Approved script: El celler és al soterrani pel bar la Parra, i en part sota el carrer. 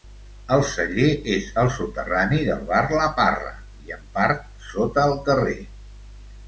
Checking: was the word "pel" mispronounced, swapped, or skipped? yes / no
yes